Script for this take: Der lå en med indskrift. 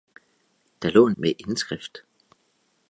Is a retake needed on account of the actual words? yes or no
no